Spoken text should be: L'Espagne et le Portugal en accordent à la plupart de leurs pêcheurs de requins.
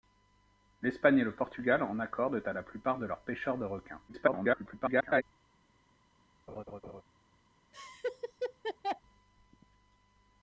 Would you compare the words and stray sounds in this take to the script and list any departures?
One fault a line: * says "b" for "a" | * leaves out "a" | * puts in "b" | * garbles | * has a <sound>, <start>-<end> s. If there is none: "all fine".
* garbles
* has a laugh, 6.5-7.0 s
* has a laugh, 7.7-9.0 s